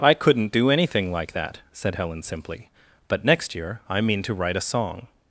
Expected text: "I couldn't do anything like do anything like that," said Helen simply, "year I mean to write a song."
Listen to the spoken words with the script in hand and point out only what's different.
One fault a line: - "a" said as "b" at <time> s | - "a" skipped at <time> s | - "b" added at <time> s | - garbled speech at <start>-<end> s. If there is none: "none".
- "do anything like" skipped at 1.3 s
- "but next" added at 3.1 s